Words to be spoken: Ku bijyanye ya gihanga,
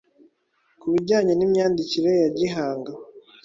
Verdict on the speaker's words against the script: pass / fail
fail